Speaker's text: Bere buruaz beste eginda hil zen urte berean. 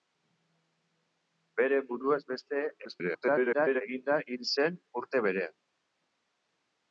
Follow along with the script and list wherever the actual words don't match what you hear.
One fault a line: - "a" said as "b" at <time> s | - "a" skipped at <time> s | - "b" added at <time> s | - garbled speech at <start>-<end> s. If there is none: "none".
- garbled speech at 2.8-3.8 s